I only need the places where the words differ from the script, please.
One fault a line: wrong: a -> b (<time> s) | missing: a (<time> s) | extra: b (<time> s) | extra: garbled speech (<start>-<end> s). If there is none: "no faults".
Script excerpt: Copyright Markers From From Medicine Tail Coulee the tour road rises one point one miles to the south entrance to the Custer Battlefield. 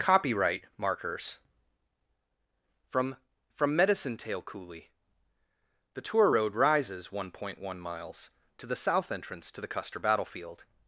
no faults